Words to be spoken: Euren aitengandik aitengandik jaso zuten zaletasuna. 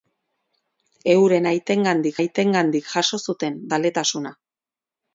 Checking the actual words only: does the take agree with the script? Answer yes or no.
yes